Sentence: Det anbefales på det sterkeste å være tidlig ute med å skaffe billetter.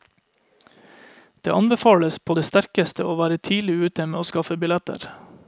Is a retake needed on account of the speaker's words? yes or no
no